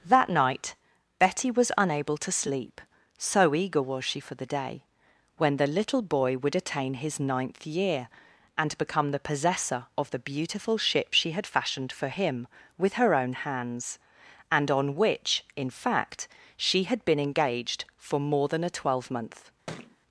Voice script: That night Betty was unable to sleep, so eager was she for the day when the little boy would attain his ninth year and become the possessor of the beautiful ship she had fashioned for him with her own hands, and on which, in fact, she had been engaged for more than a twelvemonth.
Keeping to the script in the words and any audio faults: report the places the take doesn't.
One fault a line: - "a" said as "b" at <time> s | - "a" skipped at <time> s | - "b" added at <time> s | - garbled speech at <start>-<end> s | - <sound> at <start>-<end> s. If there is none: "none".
- thud at 19.7-20.0 s